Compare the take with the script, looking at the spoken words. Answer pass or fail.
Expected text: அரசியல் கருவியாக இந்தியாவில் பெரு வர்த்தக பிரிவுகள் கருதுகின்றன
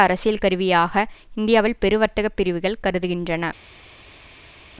pass